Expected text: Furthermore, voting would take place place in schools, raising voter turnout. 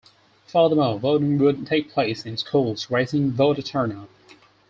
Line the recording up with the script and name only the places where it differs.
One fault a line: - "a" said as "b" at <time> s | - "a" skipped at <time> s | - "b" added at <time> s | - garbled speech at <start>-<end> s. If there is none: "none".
- "place" skipped at 2.2 s